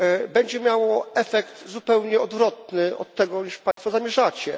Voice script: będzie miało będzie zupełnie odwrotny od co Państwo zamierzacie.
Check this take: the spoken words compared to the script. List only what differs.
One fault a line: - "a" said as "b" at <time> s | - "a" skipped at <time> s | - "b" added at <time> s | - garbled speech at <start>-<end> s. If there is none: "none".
- "będzie" said as "efekt" at 1.1 s
- "tego" added at 3.1 s